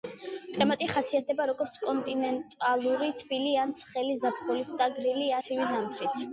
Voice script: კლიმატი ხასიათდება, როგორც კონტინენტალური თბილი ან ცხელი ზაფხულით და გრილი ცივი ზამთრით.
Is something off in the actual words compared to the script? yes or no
no